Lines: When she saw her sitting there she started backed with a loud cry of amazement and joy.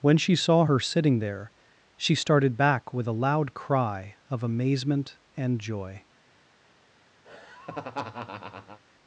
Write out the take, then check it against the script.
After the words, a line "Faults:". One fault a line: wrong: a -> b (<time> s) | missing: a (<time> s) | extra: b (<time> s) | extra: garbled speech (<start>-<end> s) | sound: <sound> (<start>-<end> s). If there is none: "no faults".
When she saw her sitting there she started back with a loud cry of amazement and joy.
Faults:
wrong: backed -> back (2.6 s)
sound: laugh (7.2-8.8 s)